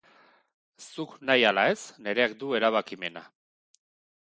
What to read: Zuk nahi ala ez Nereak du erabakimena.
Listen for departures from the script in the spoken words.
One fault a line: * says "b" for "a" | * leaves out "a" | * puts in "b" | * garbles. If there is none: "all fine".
all fine